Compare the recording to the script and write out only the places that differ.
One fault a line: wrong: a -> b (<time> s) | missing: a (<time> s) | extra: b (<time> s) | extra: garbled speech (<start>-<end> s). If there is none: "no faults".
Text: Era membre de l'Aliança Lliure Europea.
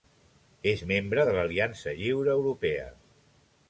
wrong: Era -> És (0.7 s)